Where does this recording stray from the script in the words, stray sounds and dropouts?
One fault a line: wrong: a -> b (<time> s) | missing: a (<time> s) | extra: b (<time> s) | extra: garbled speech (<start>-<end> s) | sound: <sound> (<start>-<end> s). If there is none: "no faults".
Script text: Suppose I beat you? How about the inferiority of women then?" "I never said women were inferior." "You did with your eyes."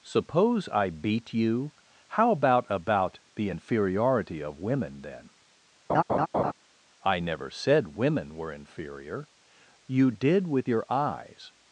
extra: about (2.7 s)
sound: laugh (5.9-6.5 s)